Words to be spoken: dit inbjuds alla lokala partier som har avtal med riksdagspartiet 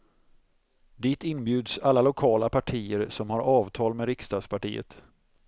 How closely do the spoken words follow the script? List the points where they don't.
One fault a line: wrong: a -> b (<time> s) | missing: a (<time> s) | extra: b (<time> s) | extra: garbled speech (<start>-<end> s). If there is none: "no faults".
no faults